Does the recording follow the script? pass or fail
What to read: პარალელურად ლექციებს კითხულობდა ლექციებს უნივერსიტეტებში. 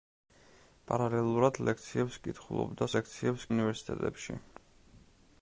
pass